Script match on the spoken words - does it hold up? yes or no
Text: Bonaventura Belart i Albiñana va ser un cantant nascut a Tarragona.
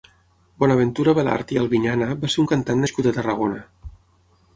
yes